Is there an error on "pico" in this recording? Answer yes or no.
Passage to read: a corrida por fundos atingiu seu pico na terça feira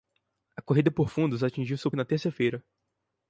yes